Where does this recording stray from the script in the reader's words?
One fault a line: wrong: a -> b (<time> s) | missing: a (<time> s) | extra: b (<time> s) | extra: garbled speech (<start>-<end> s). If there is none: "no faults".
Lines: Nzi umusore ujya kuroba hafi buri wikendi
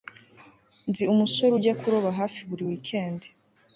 no faults